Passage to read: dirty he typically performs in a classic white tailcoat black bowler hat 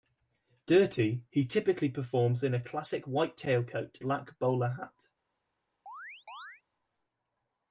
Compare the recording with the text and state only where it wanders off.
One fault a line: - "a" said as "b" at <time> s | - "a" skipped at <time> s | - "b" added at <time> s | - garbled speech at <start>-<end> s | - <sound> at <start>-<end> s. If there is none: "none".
- chirp at 5.9-6.6 s